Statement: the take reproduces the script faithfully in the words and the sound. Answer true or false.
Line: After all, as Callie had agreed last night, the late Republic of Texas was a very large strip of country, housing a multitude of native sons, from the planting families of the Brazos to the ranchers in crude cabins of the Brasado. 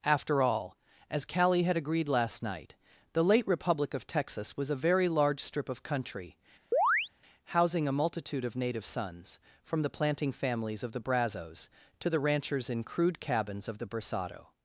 false